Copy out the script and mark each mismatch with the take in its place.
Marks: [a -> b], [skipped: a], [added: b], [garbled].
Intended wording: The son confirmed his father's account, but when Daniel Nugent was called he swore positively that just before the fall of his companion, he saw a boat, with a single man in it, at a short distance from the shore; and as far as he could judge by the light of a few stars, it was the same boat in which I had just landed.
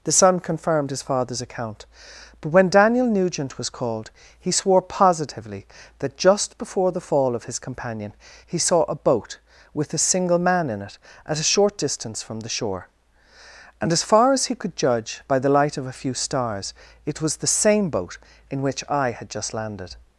The son confirmed his father's account, but when Daniel Nugent was called he swore positively that just before the fall of his companion, he saw a boat, with a single man in it, at a short distance from the shore; and as far as he could judge by the light of a few stars, it was the same boat in which I had just landed.